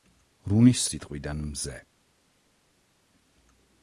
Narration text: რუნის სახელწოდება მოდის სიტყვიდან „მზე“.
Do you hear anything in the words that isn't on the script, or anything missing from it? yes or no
yes